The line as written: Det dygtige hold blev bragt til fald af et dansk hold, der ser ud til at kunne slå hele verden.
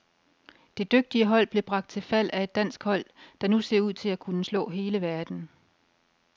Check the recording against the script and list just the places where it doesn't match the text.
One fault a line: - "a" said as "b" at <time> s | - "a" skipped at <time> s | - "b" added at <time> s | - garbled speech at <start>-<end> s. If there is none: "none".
- "nu" added at 3.5 s